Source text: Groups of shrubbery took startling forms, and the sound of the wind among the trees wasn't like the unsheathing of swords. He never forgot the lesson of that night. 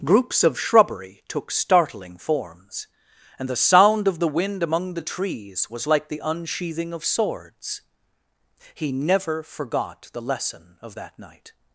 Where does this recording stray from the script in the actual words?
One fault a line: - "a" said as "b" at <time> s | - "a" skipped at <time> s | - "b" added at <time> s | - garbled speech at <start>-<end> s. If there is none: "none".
- "wasn't" said as "was" at 5.7 s